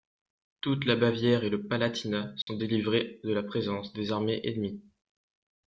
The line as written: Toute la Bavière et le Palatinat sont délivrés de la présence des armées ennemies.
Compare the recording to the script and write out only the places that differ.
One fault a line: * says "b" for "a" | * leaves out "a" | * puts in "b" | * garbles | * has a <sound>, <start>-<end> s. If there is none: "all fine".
* has a dropout, 2.4-2.5 s